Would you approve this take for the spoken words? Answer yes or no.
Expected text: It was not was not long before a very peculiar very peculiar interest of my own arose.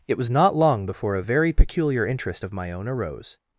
no